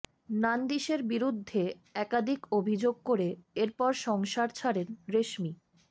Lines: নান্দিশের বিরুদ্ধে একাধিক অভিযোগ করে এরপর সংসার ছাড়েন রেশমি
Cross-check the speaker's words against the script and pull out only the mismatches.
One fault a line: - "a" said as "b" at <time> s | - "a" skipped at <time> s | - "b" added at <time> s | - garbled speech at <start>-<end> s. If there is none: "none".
none